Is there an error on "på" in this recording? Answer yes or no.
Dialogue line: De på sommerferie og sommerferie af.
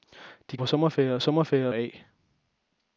no